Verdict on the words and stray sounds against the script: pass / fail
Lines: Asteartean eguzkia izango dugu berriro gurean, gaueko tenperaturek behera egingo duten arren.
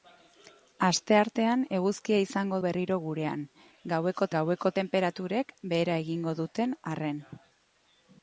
fail